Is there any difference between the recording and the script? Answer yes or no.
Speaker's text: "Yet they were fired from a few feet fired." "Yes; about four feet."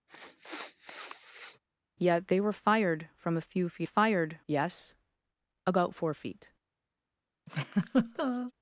no